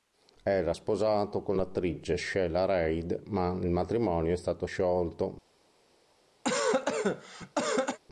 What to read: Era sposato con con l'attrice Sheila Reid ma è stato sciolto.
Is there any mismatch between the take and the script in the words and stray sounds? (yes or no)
yes